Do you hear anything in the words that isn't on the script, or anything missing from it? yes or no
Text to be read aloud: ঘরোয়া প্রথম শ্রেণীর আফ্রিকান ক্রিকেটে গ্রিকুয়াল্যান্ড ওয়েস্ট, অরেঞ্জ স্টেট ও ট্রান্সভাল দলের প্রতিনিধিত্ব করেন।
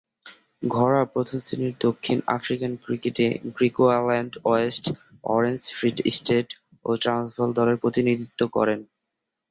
yes